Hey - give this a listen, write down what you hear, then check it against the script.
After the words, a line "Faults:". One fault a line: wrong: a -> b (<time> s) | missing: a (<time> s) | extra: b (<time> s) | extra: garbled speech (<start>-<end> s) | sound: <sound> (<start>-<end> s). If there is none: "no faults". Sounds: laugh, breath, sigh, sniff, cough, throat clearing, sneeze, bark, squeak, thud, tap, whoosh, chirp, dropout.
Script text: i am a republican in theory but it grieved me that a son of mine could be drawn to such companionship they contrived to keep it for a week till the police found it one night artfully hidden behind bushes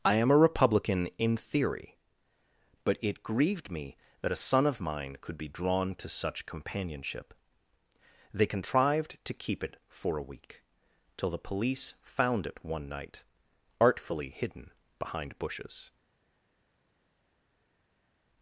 i am a republican in theory but it grieved me that a son of mine could be drawn to such companionship they contrived to keep it for a week till the police found it one night artfully hidden behind bushes
Faults:
no faults